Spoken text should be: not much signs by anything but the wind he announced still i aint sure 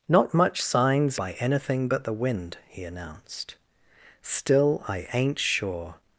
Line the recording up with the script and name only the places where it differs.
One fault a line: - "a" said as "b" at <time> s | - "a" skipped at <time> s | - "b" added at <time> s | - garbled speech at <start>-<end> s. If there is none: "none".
none